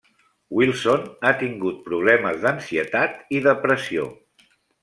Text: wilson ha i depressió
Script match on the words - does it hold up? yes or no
no